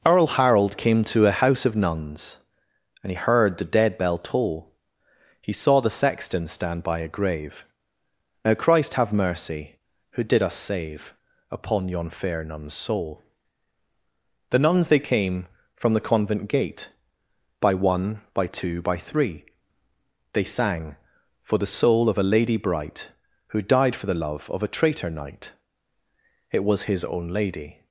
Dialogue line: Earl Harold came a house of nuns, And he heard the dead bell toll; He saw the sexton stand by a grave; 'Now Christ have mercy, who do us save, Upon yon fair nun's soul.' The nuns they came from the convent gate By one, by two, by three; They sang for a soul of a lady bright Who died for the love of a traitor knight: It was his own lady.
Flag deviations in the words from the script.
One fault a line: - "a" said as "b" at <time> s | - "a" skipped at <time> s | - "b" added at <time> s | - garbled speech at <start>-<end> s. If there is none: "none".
- "to" added at 1.0 s
- "do" said as "did" at 10.2 s
- "a" said as "the" at 21.6 s